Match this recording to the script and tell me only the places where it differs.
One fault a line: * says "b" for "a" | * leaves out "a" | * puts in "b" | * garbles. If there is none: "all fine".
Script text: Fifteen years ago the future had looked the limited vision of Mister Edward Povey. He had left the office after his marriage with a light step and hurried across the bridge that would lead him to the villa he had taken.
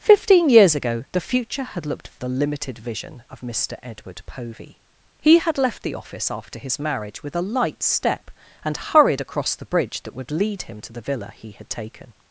all fine